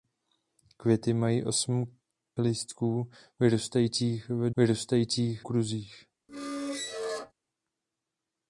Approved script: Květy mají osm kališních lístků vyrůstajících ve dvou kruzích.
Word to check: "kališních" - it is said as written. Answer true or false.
false